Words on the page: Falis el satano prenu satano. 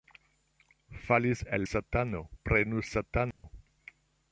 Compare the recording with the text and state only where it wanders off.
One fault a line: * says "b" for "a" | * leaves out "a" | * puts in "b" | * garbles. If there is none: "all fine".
all fine